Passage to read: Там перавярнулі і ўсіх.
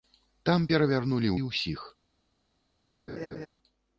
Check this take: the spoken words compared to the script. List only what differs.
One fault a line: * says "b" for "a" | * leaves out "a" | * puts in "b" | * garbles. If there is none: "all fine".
all fine